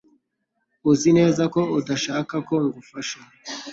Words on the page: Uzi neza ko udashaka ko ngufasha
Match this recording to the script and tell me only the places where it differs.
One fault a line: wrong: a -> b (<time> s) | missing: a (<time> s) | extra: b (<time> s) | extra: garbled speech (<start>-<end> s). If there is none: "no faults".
no faults